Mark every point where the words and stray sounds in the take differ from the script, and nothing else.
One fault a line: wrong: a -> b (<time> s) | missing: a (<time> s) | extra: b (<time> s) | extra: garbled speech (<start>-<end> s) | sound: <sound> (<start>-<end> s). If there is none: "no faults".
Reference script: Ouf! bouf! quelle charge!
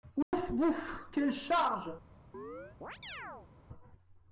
sound: dropout (0.2-0.3 s)
sound: chirp (2.3-3.5 s)